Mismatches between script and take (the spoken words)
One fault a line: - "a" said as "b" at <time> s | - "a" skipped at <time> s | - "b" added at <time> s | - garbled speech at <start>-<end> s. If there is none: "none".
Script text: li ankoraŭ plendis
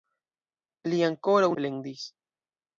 none